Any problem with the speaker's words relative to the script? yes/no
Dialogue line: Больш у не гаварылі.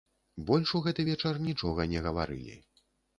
yes